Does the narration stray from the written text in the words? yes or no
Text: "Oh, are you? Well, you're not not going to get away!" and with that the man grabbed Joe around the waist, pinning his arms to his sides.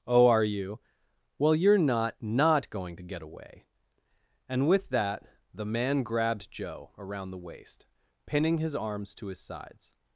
no